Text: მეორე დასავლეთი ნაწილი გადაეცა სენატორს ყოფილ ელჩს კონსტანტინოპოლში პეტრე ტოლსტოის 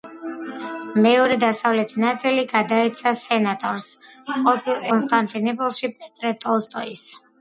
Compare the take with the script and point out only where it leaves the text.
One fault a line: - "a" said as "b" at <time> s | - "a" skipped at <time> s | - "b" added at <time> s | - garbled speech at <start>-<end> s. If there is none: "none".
- "ელჩს" skipped at 4.9 s